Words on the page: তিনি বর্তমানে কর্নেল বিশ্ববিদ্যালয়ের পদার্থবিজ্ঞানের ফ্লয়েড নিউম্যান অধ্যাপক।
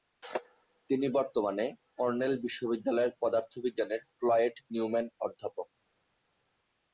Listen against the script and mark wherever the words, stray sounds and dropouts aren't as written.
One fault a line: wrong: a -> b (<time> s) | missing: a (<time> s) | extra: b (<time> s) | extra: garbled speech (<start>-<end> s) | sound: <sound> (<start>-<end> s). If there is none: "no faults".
no faults